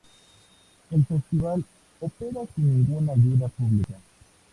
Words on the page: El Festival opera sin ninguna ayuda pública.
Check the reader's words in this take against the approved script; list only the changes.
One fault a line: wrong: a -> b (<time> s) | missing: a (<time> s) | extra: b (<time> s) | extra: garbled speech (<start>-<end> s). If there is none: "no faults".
no faults